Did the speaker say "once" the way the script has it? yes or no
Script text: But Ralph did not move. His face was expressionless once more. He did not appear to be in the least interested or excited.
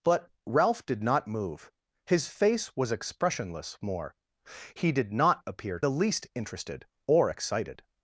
no